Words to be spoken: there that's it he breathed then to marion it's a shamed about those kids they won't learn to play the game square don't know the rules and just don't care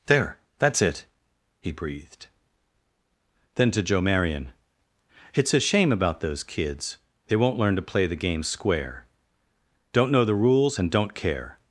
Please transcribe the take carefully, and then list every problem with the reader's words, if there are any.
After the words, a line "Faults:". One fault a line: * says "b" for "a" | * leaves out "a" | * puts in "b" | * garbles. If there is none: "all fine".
there that's it he breathed then to joe marion it's a shame about those kids they won't learn to play the game square don't know the rules and don't care
Faults:
* puts in "joe"
* says "shame" for "shamed"
* leaves out "just"